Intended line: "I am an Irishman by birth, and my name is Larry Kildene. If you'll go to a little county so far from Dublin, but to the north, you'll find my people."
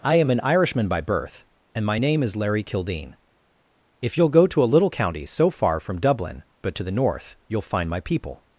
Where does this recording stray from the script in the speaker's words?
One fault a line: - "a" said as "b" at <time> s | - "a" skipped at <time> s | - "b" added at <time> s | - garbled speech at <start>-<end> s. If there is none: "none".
none